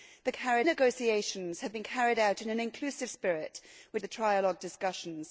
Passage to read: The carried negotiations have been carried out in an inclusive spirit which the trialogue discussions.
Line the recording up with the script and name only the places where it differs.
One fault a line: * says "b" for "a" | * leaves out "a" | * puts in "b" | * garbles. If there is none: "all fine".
all fine